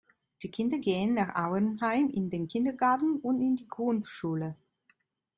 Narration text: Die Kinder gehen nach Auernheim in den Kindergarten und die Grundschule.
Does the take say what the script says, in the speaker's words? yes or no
no